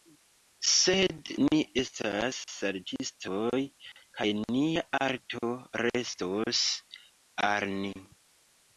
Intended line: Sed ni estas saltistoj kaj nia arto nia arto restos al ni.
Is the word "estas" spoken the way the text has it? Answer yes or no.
yes